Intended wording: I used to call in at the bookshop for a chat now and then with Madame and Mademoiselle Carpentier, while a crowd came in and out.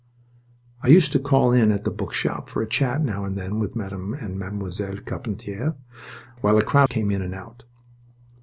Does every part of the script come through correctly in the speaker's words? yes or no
yes